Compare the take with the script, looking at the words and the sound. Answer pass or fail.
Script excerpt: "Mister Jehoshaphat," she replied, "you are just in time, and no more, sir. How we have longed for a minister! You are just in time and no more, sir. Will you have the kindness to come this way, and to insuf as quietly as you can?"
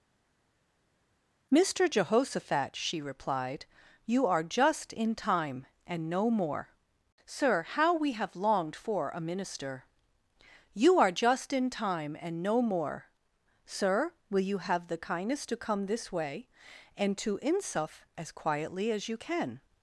pass